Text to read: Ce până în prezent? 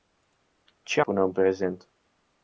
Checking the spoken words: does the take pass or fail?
pass